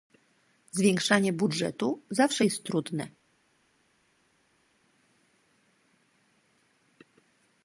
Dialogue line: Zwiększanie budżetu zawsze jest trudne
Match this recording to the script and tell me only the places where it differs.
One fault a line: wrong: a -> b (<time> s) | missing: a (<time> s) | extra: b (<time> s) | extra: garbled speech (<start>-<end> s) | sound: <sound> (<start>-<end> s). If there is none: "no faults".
no faults